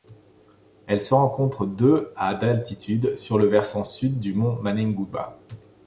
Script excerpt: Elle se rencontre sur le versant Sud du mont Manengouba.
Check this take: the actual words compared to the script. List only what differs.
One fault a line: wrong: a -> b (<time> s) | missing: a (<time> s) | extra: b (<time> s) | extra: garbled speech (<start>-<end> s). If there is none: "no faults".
extra: de à d'altitude (1.7 s)